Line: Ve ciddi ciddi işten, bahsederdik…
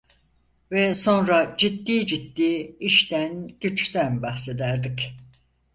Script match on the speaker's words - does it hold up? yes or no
no